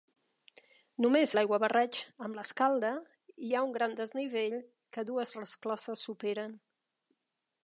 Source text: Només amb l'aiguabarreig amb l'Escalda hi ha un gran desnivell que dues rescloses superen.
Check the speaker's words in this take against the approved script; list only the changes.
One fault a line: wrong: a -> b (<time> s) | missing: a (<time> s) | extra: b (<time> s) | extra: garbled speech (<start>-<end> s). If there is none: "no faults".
missing: amb (1.3 s)